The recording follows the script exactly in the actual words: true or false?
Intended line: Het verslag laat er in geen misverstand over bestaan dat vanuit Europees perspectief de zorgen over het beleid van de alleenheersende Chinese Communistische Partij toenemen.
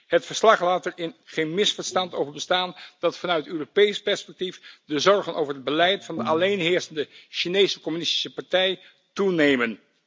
true